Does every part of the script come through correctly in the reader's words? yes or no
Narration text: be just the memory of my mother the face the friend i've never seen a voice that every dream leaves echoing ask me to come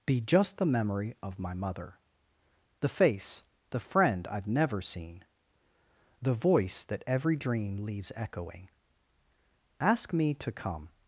no